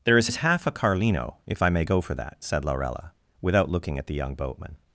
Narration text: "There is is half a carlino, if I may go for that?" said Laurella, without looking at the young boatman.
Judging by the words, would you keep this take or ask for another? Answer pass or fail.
pass